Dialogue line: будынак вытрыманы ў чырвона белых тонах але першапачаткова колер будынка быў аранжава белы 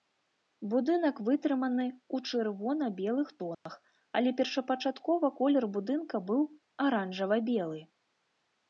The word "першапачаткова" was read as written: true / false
true